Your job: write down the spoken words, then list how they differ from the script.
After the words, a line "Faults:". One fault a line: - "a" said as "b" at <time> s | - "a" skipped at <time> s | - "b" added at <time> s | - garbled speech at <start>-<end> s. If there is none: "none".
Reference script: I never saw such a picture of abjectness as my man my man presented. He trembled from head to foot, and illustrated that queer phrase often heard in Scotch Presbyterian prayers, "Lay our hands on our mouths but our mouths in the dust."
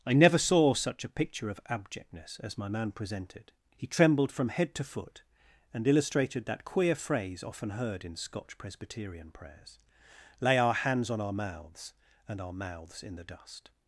I never saw such a picture of abjectness as my man presented. He trembled from head to foot, and illustrated that queer phrase often heard in Scotch Presbyterian prayers, "Lay our hands on our mouths and our mouths in the dust."
Faults:
- "my man" skipped at 2.9 s
- "but" said as "and" at 12.3 s